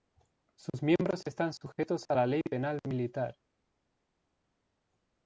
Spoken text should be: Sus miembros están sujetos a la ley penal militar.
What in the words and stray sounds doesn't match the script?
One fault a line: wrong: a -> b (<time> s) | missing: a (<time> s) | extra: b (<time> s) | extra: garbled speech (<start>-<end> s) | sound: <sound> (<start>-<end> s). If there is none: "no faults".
no faults